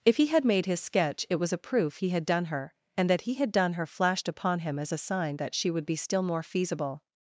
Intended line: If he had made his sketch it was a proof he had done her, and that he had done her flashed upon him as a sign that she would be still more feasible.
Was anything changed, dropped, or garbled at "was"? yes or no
no